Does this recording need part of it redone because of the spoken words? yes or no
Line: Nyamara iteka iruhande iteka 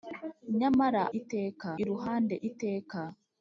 no